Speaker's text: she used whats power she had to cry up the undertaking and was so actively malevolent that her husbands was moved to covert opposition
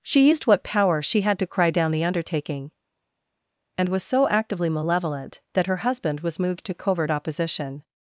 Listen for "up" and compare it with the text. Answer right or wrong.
wrong